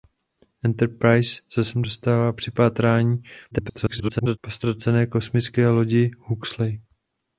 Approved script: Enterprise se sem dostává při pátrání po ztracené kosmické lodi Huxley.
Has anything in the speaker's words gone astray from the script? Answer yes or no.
yes